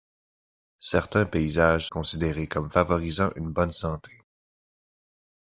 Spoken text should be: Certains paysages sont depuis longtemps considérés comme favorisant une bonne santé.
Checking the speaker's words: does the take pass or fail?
fail